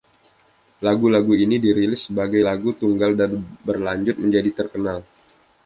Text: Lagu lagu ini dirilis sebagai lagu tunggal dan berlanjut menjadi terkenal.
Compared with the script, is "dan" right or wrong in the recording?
right